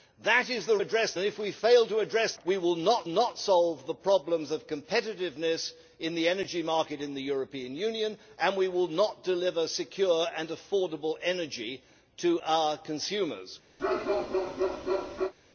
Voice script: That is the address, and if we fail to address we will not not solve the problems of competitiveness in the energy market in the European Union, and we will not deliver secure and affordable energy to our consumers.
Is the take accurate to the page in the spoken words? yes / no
yes